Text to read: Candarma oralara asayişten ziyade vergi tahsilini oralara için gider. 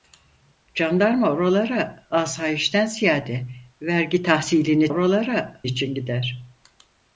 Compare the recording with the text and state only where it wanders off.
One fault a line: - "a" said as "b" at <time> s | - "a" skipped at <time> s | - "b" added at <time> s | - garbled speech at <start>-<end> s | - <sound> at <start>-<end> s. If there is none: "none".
none